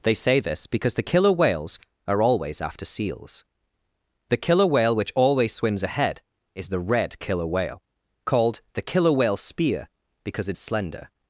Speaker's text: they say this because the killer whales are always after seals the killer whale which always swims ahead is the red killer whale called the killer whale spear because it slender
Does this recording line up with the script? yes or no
yes